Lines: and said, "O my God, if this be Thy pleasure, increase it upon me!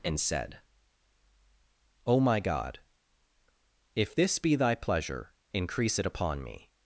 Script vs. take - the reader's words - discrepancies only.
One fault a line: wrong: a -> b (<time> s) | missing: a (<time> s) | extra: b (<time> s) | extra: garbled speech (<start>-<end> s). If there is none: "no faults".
no faults